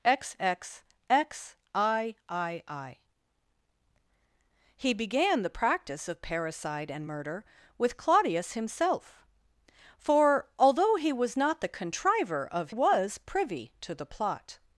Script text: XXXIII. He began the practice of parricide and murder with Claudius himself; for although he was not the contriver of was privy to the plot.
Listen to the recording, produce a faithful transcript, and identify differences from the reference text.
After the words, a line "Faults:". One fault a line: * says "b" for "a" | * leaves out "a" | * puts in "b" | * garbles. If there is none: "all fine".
XXXIII. He began the practice of parricide and murder with Claudius himself; for although he was not the contriver of was privy to the plot.
Faults:
all fine